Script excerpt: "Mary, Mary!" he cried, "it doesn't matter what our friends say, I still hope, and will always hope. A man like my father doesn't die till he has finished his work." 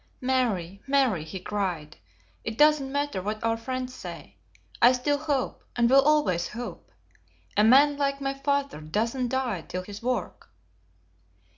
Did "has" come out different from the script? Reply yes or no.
yes